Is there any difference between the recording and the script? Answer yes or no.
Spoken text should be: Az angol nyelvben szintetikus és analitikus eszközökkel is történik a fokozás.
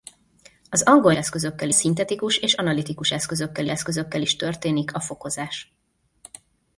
yes